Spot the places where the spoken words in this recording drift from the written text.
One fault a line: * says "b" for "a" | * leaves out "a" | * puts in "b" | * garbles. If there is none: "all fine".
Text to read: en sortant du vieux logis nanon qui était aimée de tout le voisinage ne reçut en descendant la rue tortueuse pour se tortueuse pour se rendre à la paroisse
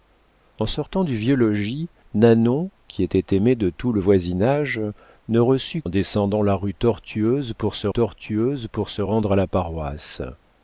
all fine